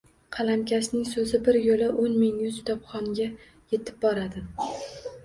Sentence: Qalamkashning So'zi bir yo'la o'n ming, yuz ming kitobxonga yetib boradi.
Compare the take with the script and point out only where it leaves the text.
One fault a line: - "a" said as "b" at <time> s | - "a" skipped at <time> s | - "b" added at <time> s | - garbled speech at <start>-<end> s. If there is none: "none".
- "ming" skipped at 2.6 s